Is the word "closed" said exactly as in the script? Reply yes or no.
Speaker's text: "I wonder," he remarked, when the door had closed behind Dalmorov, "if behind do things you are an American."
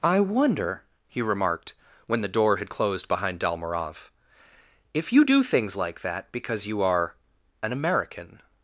yes